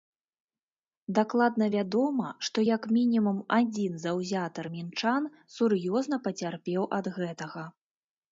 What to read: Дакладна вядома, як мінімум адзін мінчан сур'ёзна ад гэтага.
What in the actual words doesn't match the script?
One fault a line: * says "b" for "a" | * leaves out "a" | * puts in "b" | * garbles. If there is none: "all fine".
* puts in "што"
* puts in "заўзятар"
* puts in "пацярпеў"